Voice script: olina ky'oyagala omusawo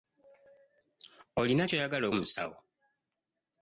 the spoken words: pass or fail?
pass